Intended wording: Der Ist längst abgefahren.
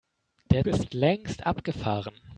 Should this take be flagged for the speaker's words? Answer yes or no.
no